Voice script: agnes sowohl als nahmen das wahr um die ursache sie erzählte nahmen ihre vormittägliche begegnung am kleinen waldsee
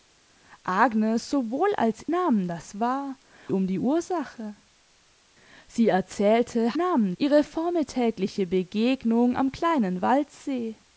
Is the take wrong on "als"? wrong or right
right